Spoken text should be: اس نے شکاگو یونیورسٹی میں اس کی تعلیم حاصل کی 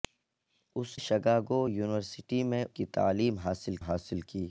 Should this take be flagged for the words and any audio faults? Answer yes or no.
yes